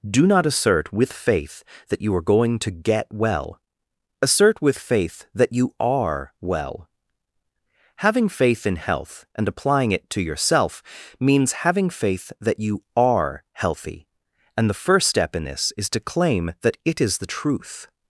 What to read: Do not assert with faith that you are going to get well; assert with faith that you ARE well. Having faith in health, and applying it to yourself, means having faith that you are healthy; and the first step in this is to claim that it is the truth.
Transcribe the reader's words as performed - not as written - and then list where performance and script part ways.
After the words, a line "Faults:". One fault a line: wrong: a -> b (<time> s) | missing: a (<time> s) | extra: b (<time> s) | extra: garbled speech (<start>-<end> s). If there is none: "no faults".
Do not assert with faith that you are going to get well; assert with faith that you ARE well. Having faith in health, and applying it to yourself, means having faith that you are healthy; and the first step in this is to claim that it is the truth.
Faults:
no faults